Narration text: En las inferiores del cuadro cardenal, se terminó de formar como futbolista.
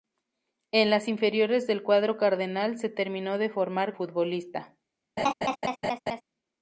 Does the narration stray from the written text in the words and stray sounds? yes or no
yes